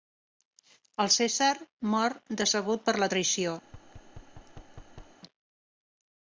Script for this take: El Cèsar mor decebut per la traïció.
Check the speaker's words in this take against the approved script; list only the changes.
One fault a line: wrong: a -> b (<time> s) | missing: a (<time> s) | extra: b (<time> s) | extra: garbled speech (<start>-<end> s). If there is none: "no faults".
no faults